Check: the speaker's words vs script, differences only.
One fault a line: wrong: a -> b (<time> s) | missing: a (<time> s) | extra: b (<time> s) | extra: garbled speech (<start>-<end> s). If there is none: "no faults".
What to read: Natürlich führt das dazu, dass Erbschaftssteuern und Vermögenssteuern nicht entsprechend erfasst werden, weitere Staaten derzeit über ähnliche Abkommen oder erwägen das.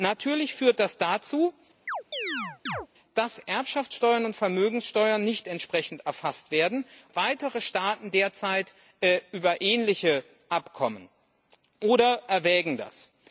no faults